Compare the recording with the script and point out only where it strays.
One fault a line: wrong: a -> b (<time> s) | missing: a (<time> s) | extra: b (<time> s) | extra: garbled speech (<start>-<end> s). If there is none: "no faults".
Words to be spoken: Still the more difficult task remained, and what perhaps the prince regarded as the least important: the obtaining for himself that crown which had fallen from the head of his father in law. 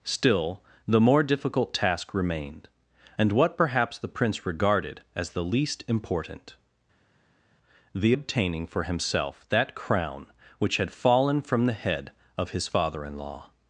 no faults